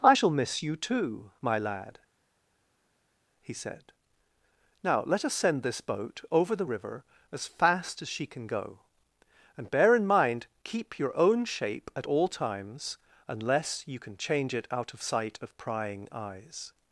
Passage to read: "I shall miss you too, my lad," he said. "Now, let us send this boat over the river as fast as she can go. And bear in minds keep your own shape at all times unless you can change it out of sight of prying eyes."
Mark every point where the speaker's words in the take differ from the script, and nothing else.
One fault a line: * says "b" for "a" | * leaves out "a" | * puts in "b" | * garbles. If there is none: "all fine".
* says "mind" for "minds"